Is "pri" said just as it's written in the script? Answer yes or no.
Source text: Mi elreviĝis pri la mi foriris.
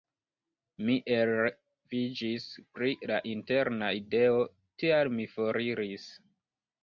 yes